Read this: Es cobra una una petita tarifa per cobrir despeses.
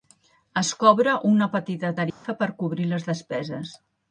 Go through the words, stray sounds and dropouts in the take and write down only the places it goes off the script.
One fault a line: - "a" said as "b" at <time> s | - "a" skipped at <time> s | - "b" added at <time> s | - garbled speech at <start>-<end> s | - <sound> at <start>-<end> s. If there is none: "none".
- "una" skipped at 1.5 s
- dropout at 2.1-2.2 s
- "les" added at 2.9 s